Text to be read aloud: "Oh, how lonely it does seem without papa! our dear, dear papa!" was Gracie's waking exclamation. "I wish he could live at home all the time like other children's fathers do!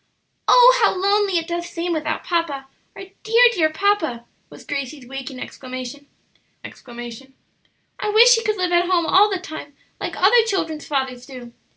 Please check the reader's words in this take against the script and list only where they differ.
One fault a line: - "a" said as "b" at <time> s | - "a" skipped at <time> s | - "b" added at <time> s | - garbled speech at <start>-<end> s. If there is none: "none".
- "exclamation" added at 6.6 s